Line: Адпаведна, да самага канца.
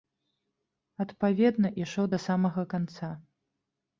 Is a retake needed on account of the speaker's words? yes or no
yes